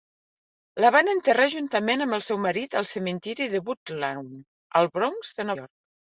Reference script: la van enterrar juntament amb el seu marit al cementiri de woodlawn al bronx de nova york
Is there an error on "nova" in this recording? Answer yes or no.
yes